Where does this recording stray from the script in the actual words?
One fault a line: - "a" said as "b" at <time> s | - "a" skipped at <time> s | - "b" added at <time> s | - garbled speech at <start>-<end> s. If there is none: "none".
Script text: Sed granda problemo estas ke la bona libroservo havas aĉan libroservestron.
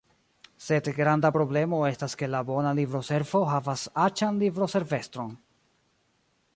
none